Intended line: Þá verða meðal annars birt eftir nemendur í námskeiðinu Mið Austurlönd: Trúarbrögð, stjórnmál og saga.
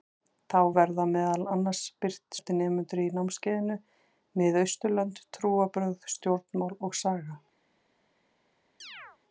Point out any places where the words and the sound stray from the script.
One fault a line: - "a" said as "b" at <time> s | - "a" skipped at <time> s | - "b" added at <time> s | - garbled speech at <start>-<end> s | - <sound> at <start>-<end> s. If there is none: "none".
- chirp at 8.8-9.2 s